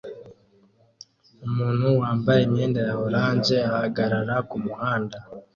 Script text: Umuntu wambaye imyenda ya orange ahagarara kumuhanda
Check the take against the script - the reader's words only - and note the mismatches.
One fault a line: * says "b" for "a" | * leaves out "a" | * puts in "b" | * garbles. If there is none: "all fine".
all fine